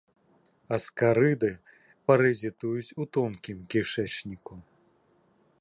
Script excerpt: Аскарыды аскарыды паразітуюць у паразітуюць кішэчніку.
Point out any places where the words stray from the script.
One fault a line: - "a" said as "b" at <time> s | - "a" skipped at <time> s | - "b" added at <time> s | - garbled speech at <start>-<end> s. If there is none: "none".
- "аскарыды" skipped at 1.5 s
- "паразітуюць" said as "тонкім" at 3.2 s